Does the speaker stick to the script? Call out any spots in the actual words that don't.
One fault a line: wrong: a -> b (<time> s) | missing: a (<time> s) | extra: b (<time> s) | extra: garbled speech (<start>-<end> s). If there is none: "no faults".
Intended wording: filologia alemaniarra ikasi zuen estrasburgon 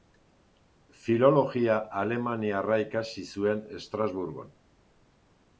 no faults